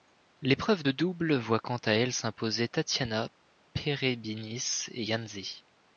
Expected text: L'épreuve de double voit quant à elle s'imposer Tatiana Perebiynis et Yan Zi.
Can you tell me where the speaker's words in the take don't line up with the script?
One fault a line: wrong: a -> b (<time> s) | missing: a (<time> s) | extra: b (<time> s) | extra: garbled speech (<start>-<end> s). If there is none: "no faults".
no faults